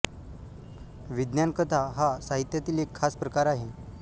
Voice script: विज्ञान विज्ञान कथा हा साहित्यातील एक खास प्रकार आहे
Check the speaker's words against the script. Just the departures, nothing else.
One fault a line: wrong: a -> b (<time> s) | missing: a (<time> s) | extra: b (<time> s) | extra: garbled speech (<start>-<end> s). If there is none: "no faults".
missing: विज्ञान (1.5 s)